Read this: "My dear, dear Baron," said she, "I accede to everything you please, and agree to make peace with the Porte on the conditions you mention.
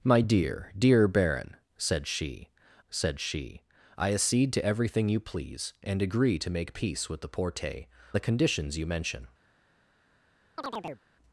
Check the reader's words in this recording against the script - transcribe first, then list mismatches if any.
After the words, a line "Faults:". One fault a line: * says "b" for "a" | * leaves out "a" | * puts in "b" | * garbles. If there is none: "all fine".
"My dear, dear Baron," said she said she, "I accede to everything you please, and agree to make peace with the Porte the conditions you mention.
Faults:
* puts in "said she"
* leaves out "on"